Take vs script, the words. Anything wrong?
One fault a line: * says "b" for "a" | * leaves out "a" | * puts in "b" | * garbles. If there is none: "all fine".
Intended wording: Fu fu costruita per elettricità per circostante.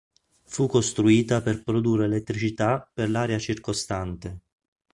* leaves out "fu"
* puts in "produrre"
* puts in "l'area"